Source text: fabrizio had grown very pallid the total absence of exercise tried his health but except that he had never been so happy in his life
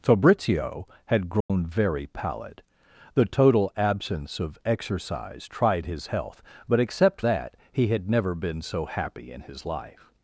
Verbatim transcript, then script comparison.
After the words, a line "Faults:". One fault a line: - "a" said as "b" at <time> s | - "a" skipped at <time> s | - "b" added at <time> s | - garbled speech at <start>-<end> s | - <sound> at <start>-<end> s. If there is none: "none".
fabrizio had grown very pallid the total absence of exercise tried his health but except that he had never been so happy in his life
Faults:
- dropout at 1.4-1.5 s